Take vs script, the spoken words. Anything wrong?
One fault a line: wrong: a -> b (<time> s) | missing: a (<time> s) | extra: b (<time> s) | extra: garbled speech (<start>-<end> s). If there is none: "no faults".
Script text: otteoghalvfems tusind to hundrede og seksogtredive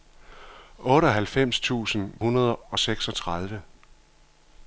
missing: to (2.1 s)